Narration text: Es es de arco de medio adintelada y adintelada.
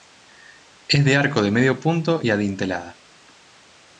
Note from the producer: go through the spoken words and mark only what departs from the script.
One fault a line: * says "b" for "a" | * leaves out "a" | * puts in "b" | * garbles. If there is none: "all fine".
* leaves out "es"
* says "punto" for "adintelada"